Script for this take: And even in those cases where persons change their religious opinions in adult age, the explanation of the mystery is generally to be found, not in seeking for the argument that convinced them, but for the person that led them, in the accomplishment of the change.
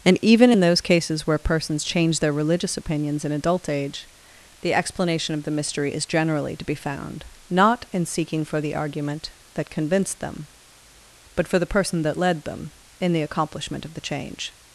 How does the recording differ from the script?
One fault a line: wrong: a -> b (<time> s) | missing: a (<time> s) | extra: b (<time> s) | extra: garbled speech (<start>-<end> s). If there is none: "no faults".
no faults